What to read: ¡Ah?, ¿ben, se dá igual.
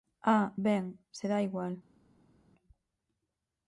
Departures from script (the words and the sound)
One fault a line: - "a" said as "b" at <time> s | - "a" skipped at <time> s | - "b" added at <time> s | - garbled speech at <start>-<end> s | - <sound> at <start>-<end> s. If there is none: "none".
none